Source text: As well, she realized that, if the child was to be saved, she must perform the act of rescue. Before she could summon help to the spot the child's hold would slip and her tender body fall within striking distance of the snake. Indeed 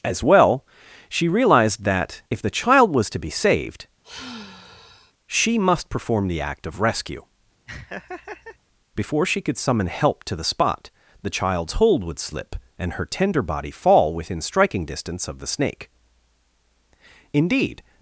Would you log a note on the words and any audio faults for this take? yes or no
yes